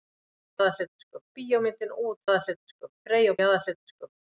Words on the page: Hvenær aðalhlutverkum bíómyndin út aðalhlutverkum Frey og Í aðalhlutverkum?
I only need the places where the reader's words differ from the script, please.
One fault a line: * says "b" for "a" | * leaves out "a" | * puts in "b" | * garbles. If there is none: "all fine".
all fine